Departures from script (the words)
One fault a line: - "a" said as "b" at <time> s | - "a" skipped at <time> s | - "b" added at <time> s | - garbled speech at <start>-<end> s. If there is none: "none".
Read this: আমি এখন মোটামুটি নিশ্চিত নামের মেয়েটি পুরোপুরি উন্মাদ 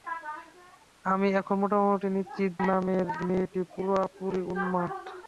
none